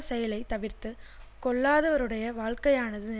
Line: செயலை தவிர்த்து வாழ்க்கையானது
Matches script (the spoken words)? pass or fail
fail